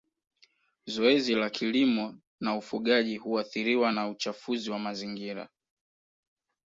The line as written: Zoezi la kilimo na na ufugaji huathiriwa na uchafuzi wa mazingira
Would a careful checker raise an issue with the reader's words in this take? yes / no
yes